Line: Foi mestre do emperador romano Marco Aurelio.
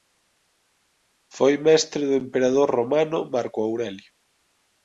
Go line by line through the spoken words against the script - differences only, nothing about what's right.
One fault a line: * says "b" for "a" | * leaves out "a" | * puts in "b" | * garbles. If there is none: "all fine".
all fine